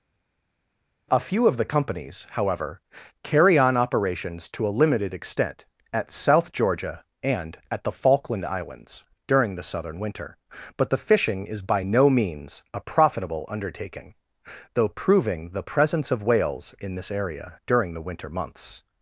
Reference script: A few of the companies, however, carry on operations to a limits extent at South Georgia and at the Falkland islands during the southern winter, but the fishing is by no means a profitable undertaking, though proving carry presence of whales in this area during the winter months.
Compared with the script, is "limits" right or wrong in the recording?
wrong